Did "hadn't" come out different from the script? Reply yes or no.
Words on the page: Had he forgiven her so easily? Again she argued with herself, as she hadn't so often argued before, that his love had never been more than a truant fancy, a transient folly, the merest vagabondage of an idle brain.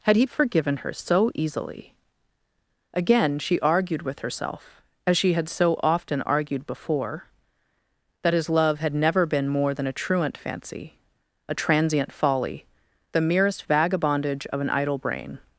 yes